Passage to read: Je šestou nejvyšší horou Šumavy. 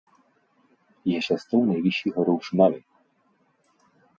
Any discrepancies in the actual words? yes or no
no